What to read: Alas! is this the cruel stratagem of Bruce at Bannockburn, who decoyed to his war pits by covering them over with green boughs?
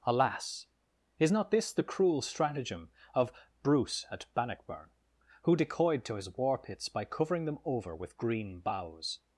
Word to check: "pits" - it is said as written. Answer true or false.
true